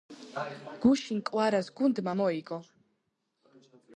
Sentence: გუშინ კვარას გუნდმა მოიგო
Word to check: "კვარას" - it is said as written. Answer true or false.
true